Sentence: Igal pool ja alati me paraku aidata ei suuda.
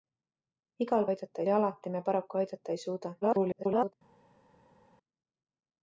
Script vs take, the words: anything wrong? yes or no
yes